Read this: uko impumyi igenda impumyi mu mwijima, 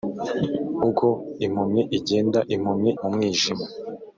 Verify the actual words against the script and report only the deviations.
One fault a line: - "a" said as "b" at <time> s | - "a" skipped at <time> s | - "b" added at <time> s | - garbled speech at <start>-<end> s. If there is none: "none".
none